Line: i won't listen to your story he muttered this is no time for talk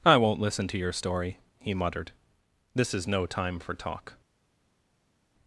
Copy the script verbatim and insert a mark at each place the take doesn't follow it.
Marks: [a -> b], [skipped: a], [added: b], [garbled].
i won't listen to your story he muttered this is no time for talk